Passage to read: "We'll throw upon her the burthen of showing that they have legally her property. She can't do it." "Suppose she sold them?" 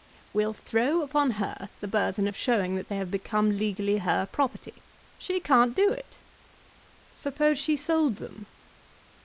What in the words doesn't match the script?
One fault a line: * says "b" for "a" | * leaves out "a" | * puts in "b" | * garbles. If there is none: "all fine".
* puts in "become"